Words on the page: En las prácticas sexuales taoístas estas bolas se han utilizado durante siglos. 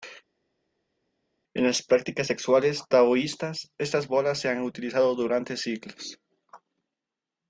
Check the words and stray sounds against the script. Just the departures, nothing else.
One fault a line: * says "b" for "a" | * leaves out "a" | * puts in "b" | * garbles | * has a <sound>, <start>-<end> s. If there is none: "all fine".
all fine